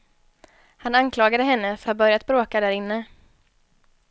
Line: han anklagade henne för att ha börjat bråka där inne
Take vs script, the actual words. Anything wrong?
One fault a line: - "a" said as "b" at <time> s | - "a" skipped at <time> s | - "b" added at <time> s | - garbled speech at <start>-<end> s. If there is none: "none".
- "att" skipped at 1.9 s